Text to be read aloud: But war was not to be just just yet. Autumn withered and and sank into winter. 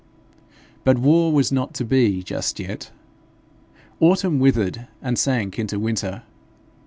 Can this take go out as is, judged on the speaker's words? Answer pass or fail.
fail